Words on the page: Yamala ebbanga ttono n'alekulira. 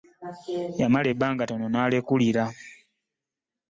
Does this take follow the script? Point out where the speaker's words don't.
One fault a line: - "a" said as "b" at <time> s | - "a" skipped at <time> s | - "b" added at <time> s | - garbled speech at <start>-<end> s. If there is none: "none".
none